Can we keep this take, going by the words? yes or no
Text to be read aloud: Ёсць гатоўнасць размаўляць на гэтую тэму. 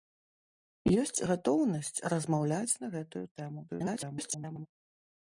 no